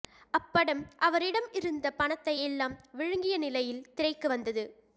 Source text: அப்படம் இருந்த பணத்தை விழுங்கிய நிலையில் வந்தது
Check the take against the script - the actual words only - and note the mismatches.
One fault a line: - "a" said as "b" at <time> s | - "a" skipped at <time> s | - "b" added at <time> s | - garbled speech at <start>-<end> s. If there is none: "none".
- "அவரிடம்" added at 1.0 s
- "எல்லாம்" added at 2.4 s
- "திரைக்கு" added at 3.9 s